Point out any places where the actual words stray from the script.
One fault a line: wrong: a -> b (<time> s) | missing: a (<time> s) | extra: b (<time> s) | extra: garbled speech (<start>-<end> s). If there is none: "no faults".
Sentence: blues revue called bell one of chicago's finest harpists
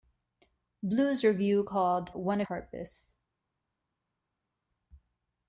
missing: bell (2.1 s)
missing: chicago's finest (2.5 s)